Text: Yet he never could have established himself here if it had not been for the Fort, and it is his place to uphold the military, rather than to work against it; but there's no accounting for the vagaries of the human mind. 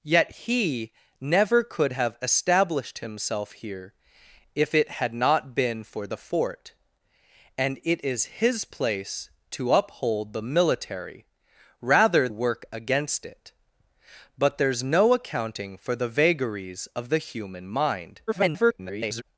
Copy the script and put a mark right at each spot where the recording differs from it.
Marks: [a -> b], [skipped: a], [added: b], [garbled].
Yet he never could have established himself here if it had not been for the Fort, and it is his place to uphold the military, rather [skipped: than to] work against it; but there's no accounting for the vagaries of the human mind. [garbled]